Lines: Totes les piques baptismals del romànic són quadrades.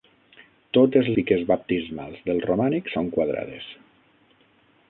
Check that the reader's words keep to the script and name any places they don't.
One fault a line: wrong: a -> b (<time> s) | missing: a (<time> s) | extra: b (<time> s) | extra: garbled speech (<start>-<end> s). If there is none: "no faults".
missing: les (1.1 s)